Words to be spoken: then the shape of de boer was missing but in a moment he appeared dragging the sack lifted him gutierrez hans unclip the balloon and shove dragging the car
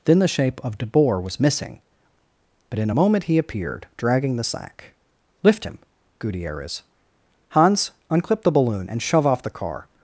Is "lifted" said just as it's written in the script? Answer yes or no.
no